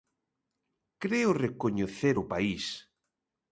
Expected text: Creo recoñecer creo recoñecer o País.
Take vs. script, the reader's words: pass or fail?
fail